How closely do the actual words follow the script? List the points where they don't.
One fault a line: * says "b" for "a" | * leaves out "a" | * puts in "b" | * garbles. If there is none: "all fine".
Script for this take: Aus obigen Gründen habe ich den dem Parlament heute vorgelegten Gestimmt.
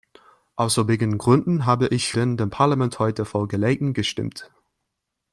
all fine